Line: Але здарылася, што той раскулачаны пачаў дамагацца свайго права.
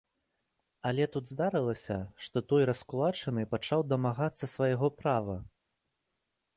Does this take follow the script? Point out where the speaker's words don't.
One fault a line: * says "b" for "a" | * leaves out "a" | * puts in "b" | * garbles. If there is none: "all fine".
* puts in "тут"